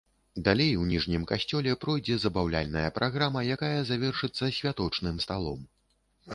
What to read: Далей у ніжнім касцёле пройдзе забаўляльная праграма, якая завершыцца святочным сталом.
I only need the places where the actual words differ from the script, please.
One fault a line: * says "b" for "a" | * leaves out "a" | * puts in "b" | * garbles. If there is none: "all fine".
all fine